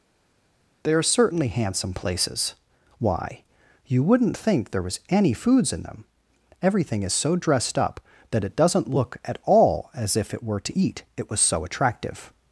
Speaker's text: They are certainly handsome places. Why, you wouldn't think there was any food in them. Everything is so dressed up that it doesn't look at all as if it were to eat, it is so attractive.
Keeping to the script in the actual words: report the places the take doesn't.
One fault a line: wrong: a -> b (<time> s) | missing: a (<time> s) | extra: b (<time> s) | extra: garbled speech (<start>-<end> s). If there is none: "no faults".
wrong: food -> foods (5.3 s)
wrong: is -> was (11.3 s)